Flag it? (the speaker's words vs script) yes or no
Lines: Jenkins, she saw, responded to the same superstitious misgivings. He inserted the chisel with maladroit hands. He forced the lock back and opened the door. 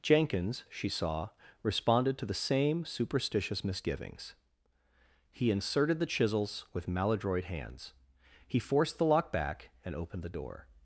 yes